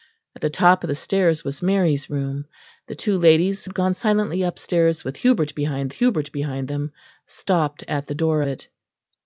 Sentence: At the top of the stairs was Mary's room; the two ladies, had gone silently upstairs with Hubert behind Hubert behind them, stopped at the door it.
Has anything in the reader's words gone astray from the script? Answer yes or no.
no